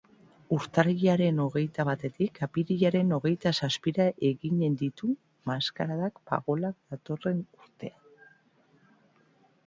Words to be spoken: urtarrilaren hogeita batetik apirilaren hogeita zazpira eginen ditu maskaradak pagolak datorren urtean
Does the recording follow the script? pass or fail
pass